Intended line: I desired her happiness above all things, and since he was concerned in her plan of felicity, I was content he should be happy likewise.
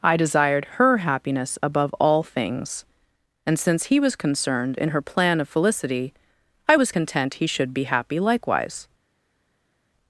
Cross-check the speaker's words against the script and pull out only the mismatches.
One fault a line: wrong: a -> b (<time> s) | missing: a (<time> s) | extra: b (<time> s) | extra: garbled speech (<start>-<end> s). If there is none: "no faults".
no faults